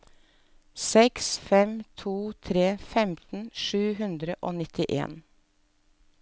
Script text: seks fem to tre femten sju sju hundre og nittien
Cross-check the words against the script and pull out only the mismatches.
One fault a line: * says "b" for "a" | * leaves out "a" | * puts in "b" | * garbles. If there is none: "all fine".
* leaves out "sju"